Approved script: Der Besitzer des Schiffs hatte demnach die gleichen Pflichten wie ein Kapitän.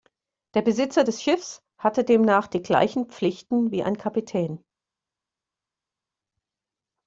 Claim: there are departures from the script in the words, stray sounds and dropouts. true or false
false